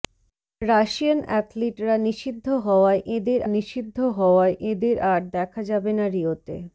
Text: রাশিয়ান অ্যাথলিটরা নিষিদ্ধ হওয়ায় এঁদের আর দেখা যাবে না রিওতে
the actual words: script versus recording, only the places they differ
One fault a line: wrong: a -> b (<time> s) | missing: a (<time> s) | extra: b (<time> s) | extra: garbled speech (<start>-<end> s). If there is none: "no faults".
extra: নিষিদ্ধ হওয়ায় এঁদের (3.5 s)